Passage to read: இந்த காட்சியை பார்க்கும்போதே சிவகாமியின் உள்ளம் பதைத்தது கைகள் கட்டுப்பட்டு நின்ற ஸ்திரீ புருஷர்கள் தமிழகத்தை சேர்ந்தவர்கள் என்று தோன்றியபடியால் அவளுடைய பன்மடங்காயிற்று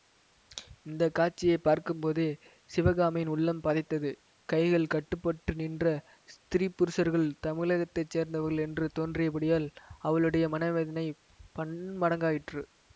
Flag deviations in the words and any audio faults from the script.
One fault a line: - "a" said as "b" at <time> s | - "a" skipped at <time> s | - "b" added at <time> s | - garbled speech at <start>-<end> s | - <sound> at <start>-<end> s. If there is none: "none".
- "மனவேதனை" added at 10.5 s